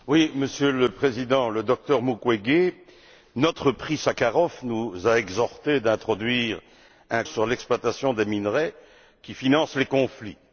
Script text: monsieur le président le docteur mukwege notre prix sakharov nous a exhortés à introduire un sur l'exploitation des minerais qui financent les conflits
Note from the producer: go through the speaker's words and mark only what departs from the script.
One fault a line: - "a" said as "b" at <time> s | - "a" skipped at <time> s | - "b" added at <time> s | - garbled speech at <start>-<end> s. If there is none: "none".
none